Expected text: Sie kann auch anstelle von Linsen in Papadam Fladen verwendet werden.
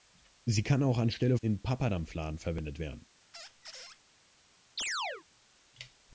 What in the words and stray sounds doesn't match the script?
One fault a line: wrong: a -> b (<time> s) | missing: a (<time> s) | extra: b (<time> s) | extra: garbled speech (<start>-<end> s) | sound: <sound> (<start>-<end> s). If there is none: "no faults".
missing: von Linsen (1.4 s)
sound: squeak (3.3-4.0 s)
sound: chirp (4.8-5.2 s)